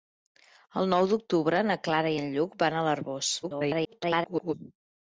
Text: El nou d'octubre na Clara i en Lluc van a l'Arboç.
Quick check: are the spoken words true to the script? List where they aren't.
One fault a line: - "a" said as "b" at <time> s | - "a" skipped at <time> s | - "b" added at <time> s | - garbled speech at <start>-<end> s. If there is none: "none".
- garbled speech at 3.4-4.5 s